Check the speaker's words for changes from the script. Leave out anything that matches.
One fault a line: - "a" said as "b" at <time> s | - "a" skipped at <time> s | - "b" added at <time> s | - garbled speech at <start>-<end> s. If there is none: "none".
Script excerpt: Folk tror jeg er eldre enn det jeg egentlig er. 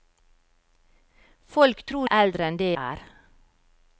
- "jeg" skipped at 2.1 s
- "jeg egentlig" skipped at 2.7 s